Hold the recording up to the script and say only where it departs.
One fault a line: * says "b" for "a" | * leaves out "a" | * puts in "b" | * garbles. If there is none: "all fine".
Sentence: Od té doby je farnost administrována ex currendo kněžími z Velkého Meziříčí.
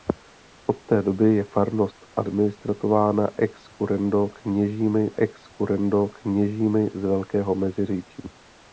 * puts in "ex currendo kněžími"